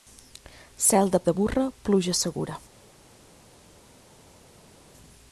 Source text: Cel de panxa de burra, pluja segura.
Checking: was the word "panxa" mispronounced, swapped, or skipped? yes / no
yes